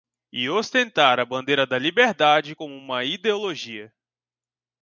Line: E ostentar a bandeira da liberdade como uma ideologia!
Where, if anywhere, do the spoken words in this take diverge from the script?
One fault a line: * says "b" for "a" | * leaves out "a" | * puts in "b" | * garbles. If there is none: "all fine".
all fine